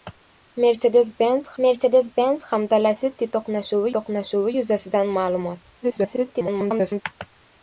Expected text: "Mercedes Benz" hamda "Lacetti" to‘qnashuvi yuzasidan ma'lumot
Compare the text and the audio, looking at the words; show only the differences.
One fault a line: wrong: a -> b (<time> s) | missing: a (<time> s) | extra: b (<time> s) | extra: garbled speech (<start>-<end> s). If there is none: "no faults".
extra: mercedes Benz (1.6 s)
extra: to‘qnashuvi (4.0 s)
extra: garbled speech (5.8-7.0 s)